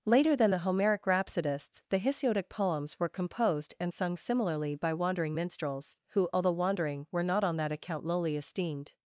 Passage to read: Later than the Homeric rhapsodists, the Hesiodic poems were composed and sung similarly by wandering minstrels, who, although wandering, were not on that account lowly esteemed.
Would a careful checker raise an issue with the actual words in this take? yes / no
no